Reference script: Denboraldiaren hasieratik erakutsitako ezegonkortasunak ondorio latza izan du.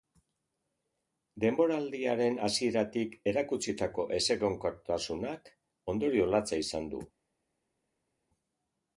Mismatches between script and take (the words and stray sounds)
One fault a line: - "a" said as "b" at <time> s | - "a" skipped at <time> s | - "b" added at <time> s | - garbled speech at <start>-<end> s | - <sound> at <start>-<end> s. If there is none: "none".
none